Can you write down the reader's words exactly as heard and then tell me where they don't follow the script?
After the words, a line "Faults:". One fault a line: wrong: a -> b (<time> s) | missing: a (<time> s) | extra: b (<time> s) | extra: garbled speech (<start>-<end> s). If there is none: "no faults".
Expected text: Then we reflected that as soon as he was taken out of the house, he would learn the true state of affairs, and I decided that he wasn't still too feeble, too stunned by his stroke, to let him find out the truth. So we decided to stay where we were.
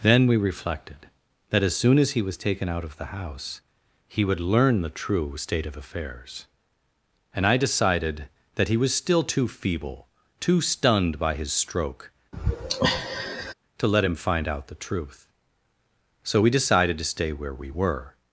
Then we reflected that as soon as he was taken out of the house, he would learn the true state of affairs, and I decided that he was still too feeble, too stunned by his stroke, to let him find out the truth. So we decided to stay where we were.
Faults:
wrong: wasn't -> was (8.8 s)